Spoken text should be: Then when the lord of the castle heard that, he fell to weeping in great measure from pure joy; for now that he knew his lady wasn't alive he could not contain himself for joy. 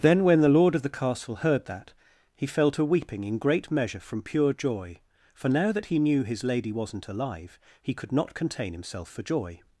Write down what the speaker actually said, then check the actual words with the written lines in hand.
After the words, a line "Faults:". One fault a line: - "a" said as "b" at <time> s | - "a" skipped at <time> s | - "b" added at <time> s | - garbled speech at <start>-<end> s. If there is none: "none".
Then when the lord of the castle heard that, he fell to weeping in great measure from pure joy; for now that he knew his lady wasn't alive he could not contain himself for joy.
Faults:
none